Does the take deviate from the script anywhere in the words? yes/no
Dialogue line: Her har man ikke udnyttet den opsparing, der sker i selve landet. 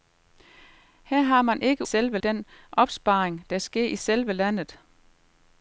yes